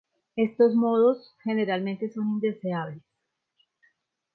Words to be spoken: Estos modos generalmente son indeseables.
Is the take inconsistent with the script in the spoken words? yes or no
no